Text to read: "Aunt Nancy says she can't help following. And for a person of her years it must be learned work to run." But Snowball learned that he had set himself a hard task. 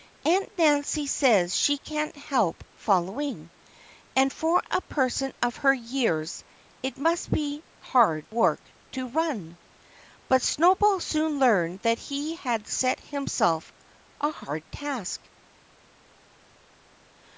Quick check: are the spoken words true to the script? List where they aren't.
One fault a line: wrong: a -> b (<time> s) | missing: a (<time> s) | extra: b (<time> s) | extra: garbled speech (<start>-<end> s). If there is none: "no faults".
wrong: learned -> hard (7.8 s)
extra: soon (11.0 s)